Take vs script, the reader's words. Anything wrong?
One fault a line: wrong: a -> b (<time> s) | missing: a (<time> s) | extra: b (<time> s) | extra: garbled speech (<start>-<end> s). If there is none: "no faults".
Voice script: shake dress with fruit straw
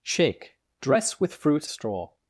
no faults